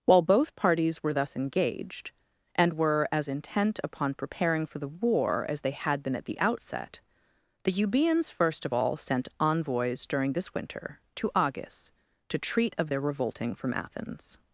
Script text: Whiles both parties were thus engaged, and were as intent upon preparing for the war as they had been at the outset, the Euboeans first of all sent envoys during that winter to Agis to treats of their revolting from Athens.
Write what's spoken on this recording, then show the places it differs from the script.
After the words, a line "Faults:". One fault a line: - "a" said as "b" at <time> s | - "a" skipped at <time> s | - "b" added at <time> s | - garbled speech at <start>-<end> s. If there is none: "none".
While both parties were thus engaged, and were as intent upon preparing for the war as they had been at the outset, the Euboeans first of all sent envoys during this winter to Agis to treat of their revolting from Athens.
Faults:
- "Whiles" said as "While" at 0.1 s
- "that" said as "this" at 10.3 s
- "treats" said as "treat" at 12.4 s